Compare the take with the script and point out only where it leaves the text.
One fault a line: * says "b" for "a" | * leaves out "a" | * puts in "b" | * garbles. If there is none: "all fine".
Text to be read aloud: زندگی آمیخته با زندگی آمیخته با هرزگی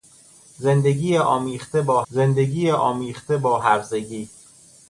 all fine